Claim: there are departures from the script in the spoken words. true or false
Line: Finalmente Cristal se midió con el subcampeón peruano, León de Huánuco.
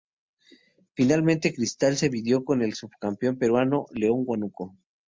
false